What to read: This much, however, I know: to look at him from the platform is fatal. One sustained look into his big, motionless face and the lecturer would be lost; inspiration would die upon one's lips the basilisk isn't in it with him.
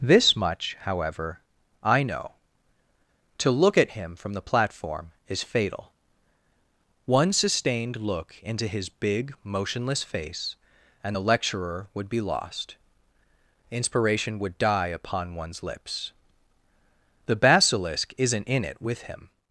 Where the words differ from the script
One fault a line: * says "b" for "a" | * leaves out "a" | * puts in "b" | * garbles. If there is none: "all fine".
all fine